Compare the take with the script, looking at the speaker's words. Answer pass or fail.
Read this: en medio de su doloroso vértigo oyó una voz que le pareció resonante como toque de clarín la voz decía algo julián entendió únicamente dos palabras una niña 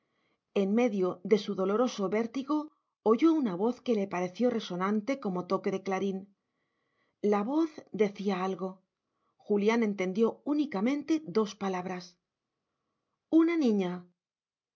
pass